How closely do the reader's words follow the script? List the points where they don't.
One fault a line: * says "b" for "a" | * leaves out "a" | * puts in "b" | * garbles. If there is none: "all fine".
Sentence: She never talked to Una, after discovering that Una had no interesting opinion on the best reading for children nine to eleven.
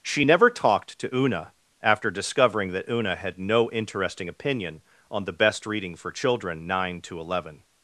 all fine